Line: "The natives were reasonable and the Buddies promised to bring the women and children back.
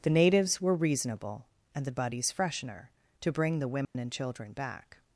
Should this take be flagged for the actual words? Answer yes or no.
yes